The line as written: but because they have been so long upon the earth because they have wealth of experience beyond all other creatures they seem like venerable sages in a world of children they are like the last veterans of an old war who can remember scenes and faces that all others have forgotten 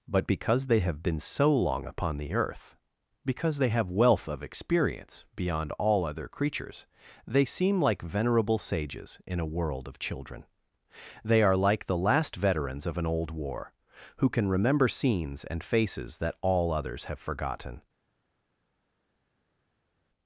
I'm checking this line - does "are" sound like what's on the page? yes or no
yes